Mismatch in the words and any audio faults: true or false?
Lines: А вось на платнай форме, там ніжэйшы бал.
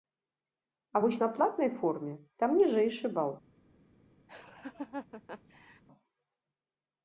true